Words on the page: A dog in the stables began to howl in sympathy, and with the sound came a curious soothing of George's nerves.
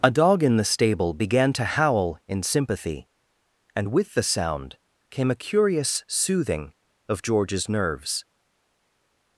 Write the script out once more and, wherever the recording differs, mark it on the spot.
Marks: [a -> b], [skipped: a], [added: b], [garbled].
A dog in the [stables -> stable] began to howl in sympathy, and with the sound came a curious soothing of George's nerves.